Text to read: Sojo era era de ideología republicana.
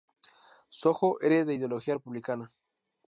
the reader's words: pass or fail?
fail